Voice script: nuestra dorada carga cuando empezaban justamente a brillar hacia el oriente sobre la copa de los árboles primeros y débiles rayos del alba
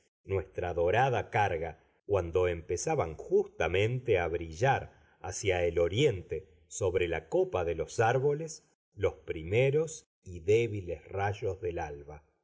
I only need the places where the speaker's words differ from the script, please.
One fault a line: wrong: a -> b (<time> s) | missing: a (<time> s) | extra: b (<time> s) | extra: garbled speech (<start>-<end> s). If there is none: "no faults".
extra: los (8.9 s)